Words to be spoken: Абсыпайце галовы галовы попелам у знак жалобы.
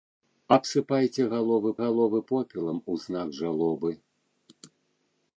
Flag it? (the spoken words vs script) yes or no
no